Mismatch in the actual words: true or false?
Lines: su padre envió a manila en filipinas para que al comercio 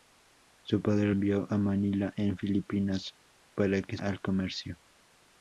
false